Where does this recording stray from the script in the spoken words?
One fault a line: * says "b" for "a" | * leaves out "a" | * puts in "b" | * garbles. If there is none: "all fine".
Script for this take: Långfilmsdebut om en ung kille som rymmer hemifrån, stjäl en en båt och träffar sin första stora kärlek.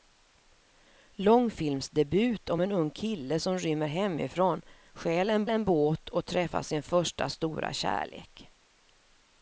all fine